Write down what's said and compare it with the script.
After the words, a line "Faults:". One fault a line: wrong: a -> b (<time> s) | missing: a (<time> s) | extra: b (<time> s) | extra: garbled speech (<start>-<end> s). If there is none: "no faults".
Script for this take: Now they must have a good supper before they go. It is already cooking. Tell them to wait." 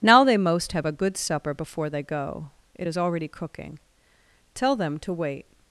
Now they most have a good supper before they go. It is already cooking. Tell them to wait."
Faults:
wrong: must -> most (0.4 s)